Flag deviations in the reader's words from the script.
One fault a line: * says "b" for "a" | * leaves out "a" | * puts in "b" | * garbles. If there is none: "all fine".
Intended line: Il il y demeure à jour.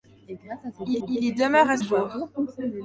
all fine